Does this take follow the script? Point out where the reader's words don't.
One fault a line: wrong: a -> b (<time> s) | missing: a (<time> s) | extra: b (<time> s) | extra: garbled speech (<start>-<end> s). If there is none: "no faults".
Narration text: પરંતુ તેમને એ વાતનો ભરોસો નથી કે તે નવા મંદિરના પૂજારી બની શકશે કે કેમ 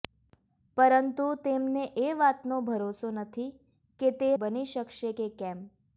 missing: નવા મંદિરના પૂજારી (4.3 s)